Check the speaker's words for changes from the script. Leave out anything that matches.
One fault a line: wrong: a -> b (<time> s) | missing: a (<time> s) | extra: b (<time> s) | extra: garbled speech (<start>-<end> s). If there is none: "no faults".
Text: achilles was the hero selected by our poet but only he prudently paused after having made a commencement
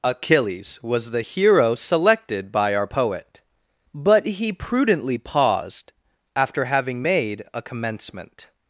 missing: only (4.3 s)